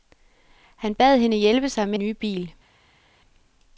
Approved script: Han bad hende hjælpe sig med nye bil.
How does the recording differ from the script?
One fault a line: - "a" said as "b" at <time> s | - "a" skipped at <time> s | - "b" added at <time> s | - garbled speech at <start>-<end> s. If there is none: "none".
none